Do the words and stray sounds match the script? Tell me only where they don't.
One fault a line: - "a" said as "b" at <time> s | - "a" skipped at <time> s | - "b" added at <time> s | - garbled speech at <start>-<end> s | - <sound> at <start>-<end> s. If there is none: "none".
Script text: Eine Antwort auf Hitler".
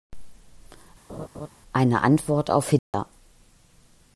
- laugh at 1.1-1.5 s
- dropout at 2.8-2.9 s